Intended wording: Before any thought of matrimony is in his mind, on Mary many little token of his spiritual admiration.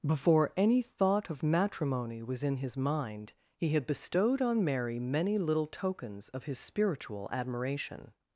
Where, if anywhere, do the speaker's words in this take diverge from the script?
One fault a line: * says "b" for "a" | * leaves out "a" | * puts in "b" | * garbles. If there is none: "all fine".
* says "was" for "is"
* puts in "he had bestowed"
* says "tokens" for "token"